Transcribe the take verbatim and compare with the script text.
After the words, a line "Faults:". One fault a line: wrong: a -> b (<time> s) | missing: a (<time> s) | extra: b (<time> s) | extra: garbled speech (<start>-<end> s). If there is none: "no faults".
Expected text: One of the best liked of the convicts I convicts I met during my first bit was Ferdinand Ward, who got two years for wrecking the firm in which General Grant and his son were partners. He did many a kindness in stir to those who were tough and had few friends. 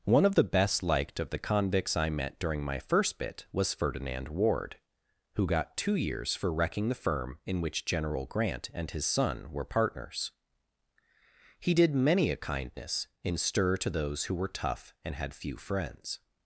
One of the best liked of the convicts I met during my first bit was Ferdinand Ward, who got two years for wrecking the firm in which General Grant and his son were partners. He did many a kindness in stir to those who were tough and had few friends.
Faults:
missing: convicts I (2.1 s)